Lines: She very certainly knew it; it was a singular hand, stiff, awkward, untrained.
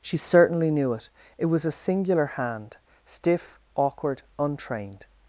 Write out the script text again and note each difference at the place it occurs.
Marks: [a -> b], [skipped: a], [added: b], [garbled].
She [skipped: very] certainly knew it; it was a singular hand, stiff, awkward, untrained.